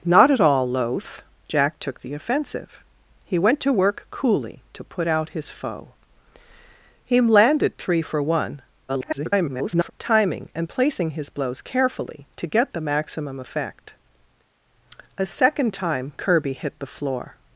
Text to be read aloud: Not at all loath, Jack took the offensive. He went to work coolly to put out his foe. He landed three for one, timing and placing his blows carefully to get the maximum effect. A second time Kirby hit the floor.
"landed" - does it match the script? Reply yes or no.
yes